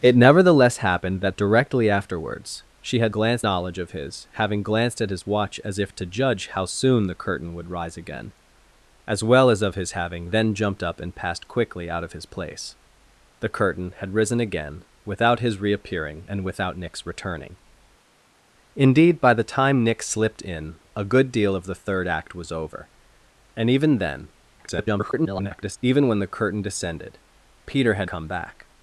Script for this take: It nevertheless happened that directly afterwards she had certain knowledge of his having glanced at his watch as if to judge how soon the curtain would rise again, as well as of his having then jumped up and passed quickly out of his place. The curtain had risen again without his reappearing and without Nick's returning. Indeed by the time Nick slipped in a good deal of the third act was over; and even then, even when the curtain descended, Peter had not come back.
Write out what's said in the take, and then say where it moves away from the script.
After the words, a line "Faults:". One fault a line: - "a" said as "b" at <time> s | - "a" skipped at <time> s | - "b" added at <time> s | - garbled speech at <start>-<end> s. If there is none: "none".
It nevertheless happened that directly afterwards she had glanced knowledge of his having glanced at his watch as if to judge how soon the curtain would rise again, as well as of his having then jumped up and passed quickly out of his place. The curtain had risen again without his reappearing and without Nick's returning. Indeed by the time Nick slipped in a good deal of the third act was over; and even then, [garbled] even when the curtain descended, Peter had come back.
Faults:
- "certain" said as "glanced" at 3.1 s
- garbled speech at 24.6-25.8 s
- "not" skipped at 28.1 s